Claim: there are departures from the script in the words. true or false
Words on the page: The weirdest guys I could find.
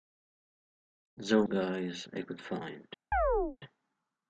true